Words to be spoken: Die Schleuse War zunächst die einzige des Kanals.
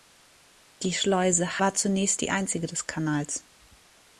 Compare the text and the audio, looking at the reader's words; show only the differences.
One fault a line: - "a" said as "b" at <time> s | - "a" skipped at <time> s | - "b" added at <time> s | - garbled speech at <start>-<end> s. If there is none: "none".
none